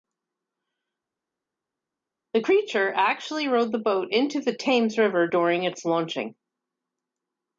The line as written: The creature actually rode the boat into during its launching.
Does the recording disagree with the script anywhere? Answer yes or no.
yes